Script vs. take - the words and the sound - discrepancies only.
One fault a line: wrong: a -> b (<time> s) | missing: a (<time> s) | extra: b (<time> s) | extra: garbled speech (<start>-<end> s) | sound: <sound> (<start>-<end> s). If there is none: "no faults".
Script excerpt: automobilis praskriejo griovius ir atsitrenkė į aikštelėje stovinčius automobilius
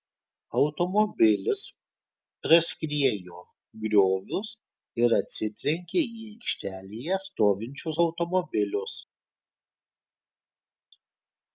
no faults